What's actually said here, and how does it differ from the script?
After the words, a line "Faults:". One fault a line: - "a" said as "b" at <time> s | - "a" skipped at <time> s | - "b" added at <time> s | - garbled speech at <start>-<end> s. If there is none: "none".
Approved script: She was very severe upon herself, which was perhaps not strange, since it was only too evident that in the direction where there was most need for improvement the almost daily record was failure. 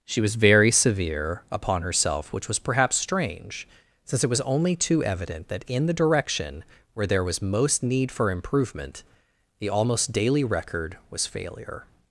She was very severe upon herself, which was perhaps strange, since it was only too evident that in the direction where there was most need for improvement the almost daily record was failure.
Faults:
- "not" skipped at 3.0 s